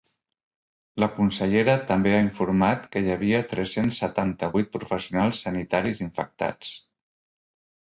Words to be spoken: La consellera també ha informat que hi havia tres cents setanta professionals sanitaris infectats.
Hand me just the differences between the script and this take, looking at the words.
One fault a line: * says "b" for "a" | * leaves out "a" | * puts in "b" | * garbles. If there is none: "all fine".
* puts in "vuit"